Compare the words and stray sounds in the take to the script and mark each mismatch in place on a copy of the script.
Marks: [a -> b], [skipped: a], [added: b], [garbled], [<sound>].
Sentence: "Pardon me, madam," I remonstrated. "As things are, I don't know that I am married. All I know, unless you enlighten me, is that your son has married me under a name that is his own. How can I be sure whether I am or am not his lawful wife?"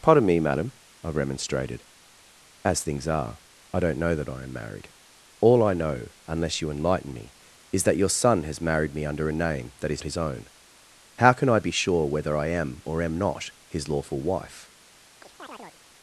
"Pardon me, madam," I remonstrated. "As things are, I don't know that I am married. All I know, unless you enlighten me, is that your son has married me under a name that is his own. How can I be sure whether I am or am not his lawful wife?" [chirp]